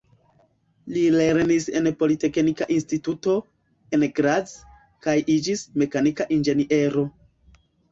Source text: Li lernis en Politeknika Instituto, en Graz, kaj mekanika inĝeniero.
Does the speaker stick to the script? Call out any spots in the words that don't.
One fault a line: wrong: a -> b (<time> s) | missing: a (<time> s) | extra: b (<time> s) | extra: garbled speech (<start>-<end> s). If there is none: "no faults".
extra: iĝis (5.4 s)